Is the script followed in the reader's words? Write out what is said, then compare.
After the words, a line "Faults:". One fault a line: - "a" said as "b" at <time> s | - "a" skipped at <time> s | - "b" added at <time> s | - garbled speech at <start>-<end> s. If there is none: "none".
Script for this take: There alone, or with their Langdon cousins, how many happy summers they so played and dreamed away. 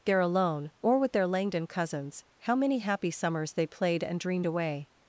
There alone, or with their Langdon cousins, how many happy summers they played and dreamed away.
Faults:
- "so" skipped at 3.7 s